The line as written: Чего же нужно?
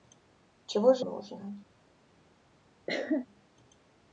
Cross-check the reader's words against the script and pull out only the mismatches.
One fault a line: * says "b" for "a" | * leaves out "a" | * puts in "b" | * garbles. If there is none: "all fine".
all fine